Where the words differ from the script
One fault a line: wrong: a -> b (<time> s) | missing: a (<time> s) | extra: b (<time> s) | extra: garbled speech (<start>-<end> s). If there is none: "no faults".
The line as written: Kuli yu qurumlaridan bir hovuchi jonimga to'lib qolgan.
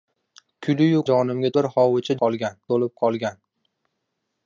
wrong: qurumlaridan -> jonimga (1.1 s)
wrong: jonimga -> qolgan (2.2 s)